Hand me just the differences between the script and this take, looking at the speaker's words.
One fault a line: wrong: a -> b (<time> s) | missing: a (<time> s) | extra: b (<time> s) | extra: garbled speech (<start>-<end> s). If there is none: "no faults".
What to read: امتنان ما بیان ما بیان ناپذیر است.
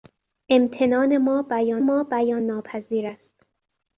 no faults